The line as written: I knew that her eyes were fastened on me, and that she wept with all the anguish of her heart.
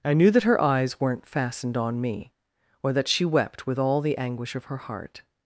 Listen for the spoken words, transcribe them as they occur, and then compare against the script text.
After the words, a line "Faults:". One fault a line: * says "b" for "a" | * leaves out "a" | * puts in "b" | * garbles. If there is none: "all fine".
I knew that her eyes weren't fastened on me, or that she wept with all the anguish of her heart.
Faults:
* says "weren't" for "were"
* says "or" for "and"